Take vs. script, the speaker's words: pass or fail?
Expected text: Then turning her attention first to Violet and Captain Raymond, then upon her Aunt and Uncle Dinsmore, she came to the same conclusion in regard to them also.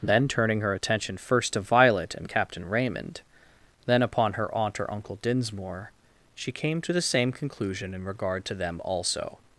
fail